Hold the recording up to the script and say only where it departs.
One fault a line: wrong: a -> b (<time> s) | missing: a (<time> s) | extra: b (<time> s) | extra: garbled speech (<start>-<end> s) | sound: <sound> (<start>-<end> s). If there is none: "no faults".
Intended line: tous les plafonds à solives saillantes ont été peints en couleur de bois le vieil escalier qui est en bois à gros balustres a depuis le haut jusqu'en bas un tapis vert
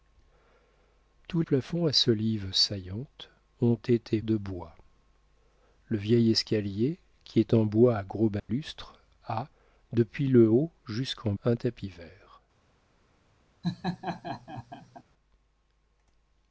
missing: les (1.4 s)
missing: peints en couleur (4.2 s)
sound: dropout (8.4-8.5 s)
missing: bas (11.3 s)
sound: laugh (13.6-15.0 s)